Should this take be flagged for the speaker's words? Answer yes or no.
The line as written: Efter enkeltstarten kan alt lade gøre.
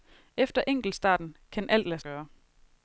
no